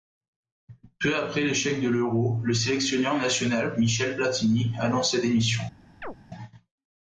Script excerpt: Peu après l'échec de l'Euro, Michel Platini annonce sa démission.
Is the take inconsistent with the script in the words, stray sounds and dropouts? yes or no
yes